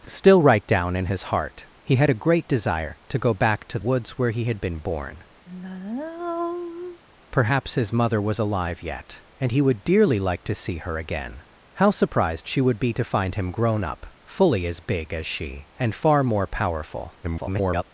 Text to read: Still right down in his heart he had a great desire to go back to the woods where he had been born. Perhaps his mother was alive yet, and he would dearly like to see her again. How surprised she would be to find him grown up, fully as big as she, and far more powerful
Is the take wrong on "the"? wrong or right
wrong